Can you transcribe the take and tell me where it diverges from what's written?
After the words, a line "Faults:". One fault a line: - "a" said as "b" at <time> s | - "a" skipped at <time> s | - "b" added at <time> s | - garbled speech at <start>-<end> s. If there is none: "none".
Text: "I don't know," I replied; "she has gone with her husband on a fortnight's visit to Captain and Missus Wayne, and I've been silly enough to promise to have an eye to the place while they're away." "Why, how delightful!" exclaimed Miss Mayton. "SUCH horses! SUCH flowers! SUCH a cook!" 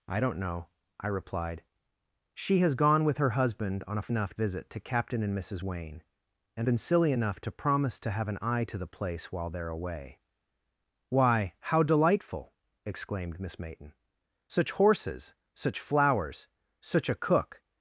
"I don't know," I replied; "she has gone with her husband on a enough visit to Captain and Missus Wayne, and Been silly enough to promise to have an eye to the place while they're away." "Why, how delightful!" exclaimed Miss Mayton. "SUCH horses! SUCH flowers! SUCH a cook!"
Faults:
- "fortnight's" said as "enough" at 4.1 s
- "I've" skipped at 6.7 s